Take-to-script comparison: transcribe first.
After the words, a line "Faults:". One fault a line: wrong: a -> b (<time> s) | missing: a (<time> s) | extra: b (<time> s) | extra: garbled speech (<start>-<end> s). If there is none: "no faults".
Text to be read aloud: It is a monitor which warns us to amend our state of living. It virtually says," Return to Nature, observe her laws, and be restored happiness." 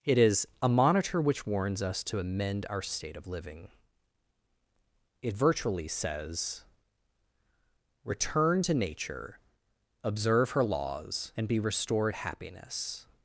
It is a monitor which warns us to amend our state of living. It virtually says," Return to Nature, observe her laws, and be restored happiness."
Faults:
no faults